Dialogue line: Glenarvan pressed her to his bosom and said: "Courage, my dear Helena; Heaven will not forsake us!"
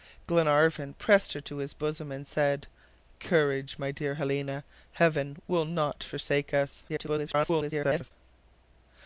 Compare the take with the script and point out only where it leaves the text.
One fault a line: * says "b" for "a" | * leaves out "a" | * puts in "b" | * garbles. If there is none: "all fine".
* garbles